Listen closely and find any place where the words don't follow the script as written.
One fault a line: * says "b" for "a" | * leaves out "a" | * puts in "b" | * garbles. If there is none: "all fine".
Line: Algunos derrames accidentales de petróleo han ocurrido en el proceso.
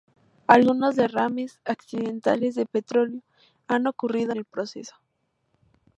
* leaves out "en"